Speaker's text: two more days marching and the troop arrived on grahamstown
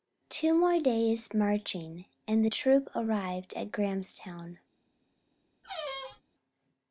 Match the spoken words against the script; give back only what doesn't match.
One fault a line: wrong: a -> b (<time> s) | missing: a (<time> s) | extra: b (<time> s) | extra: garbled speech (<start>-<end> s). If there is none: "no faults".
wrong: on -> at (3.5 s)